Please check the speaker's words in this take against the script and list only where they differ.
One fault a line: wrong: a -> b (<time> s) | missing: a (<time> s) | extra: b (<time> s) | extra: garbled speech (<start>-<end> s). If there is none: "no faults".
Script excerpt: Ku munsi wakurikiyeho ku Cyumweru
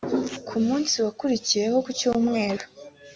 no faults